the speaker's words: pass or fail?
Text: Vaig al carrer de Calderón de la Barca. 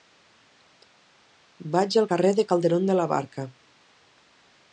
pass